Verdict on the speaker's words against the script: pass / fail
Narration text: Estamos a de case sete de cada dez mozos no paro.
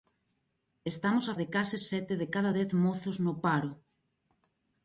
pass